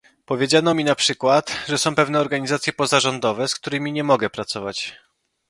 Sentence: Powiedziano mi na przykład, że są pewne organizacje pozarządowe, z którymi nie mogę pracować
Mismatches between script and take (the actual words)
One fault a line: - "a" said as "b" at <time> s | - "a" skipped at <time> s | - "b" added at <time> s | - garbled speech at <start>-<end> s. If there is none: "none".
none